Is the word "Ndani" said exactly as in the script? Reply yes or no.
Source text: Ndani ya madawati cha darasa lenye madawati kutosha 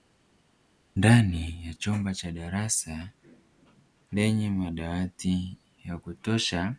yes